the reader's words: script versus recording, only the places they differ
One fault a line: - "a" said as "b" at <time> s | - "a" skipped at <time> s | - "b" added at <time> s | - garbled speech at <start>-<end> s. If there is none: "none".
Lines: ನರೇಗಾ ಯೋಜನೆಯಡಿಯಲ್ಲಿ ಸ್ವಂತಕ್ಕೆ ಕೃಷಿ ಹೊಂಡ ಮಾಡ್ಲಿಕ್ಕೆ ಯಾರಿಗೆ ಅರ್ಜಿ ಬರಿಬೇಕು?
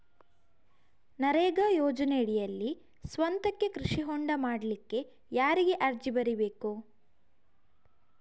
none